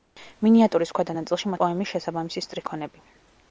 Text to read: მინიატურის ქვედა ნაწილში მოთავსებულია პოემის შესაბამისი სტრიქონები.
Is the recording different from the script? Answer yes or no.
yes